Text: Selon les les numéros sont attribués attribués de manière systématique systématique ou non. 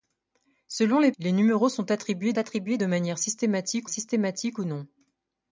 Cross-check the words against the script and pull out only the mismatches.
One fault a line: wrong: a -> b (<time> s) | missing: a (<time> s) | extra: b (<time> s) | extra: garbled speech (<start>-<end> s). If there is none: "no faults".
no faults